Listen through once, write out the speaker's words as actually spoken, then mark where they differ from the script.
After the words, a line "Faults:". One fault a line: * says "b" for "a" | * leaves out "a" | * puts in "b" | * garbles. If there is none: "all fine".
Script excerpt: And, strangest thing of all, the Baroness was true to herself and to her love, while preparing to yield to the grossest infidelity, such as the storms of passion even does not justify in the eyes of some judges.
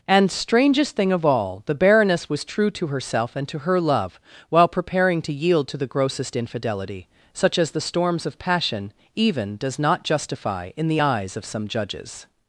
And, strangest thing of all, the Baroness was true to herself and to her love, while preparing to yield to the grossest infidelity, such as the storms of passion even does not justify in the eyes of some judges.
Faults:
all fine